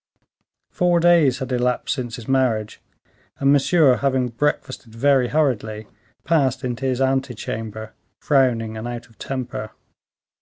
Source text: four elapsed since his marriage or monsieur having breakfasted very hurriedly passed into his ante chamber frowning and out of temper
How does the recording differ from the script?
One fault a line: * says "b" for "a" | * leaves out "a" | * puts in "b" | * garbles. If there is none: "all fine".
* puts in "days had"
* says "and" for "or"